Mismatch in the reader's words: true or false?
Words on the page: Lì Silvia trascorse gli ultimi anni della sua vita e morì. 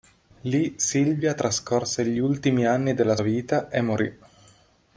true